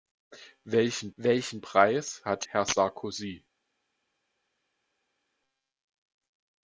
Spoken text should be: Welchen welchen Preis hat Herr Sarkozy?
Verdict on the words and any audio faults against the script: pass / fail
pass